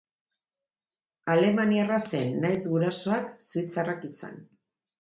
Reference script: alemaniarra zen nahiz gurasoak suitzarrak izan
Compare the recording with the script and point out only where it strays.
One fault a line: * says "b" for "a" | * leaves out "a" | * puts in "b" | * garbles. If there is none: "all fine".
all fine